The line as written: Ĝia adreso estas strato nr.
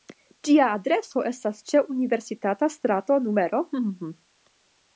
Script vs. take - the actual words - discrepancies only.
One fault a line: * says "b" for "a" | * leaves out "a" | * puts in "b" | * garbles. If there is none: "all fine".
* puts in "ĉe Universitata"